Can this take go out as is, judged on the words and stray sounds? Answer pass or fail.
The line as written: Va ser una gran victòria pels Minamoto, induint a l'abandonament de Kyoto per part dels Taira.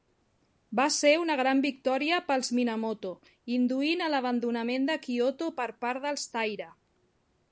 pass